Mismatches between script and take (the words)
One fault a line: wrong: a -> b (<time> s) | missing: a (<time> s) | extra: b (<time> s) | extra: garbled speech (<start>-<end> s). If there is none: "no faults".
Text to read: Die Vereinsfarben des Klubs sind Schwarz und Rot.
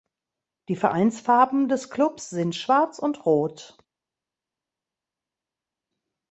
no faults